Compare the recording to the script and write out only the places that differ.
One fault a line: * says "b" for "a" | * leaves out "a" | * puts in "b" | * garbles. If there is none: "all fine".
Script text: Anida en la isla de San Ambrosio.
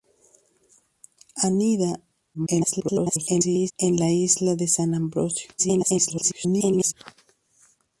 * garbles
* garbles